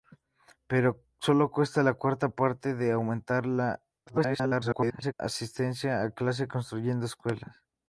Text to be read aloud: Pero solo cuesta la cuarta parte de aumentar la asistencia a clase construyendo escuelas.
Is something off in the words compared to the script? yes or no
yes